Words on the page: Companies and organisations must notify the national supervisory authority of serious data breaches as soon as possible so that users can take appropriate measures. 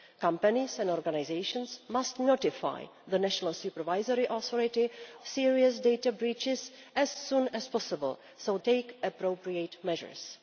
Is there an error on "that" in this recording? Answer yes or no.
yes